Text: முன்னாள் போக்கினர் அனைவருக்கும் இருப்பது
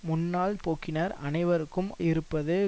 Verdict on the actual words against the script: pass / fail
pass